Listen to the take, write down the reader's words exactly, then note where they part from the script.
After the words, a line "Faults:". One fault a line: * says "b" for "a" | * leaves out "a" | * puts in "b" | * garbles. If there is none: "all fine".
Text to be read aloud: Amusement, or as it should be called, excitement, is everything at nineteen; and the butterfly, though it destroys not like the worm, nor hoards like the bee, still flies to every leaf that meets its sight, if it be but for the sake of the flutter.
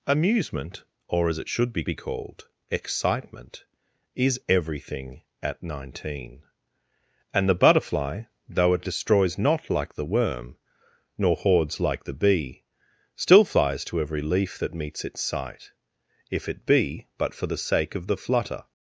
Amusement, or as it should be be called, excitement, is everything at nineteen; and the butterfly, though it destroys not like the worm, nor hoards like the bee, still flies to every leaf that meets its sight, if it be but for the sake of the flutter.
Faults:
* puts in "be"